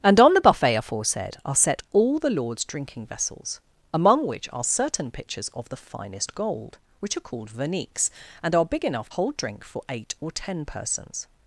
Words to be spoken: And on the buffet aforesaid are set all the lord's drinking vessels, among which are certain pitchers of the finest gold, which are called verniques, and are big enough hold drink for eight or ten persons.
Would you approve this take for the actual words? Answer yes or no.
yes